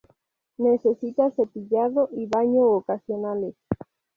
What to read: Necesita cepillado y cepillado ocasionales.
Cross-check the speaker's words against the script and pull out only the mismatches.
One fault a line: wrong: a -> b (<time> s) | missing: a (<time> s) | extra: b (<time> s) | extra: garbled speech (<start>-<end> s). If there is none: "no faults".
wrong: cepillado -> baño (2.2 s)